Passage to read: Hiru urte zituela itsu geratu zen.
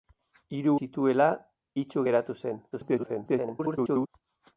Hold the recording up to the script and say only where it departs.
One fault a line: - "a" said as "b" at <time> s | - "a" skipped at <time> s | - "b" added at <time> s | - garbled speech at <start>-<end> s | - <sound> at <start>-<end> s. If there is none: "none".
- "urte" skipped at 0.7 s
- garbled speech at 2.7-4.1 s